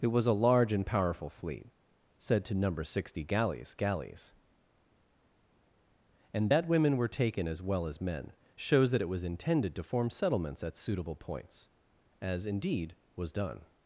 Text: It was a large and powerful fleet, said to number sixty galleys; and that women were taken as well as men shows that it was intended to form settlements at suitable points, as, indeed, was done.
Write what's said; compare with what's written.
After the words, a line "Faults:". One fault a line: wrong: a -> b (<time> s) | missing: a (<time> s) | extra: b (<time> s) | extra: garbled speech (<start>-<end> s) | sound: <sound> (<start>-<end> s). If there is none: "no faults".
It was a large and powerful fleet, said to number sixty galleys galleys; and that women were taken as well as men shows that it was intended to form settlements at suitable points, as, indeed, was done.
Faults:
extra: galleys (3.7 s)